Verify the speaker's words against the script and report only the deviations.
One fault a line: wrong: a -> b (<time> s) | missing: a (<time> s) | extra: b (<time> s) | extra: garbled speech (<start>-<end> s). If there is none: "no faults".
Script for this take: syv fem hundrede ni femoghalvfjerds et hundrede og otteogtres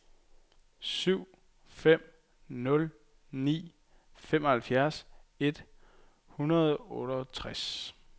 wrong: hundrede -> nul (2.5 s)